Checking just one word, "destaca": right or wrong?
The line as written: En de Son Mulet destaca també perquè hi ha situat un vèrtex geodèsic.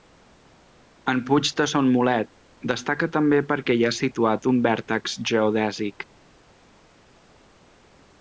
right